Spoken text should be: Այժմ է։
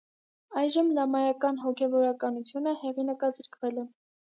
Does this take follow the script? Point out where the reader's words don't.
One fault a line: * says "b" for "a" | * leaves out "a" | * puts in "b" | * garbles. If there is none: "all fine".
* puts in "լամայական հոգևորականությունը հեղինակազրկվել"